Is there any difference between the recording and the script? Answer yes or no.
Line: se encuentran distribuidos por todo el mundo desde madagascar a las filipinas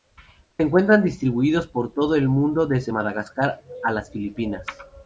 no